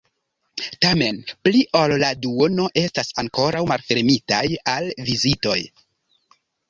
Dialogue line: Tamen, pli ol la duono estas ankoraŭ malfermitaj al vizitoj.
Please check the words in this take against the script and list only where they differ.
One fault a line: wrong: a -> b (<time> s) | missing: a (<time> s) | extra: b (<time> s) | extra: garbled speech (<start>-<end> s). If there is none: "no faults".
no faults